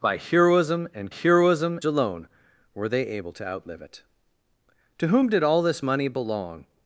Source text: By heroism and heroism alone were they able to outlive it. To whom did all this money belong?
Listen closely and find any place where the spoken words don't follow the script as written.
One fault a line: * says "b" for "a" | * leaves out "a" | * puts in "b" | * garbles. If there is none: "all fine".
all fine